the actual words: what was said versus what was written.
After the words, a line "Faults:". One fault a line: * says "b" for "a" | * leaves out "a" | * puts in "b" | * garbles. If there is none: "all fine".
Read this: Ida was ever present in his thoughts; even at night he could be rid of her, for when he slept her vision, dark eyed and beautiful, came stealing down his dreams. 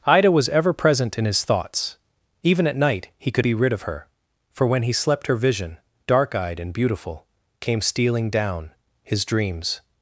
Ida was ever present in his thoughts; even at night he could be rid of her, for when he slept her vision, dark eyed and beautiful, came stealing down his dreams.
Faults:
all fine